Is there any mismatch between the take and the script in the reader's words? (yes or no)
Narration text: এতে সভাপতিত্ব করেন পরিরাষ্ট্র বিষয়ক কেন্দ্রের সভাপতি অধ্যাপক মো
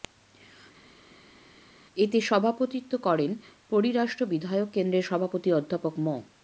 no